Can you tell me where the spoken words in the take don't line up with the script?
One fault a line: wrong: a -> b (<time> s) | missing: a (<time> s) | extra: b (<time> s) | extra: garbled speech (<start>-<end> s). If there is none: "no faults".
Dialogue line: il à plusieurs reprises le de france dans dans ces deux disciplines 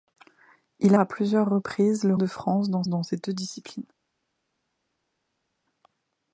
no faults